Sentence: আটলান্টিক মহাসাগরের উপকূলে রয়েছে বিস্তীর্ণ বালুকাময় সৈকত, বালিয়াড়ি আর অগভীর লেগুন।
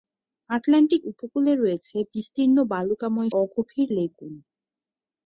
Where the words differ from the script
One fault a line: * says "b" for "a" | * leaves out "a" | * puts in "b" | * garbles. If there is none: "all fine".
* leaves out "মহাসাগরের"
* leaves out "সৈকত বালিয়াড়ি আর"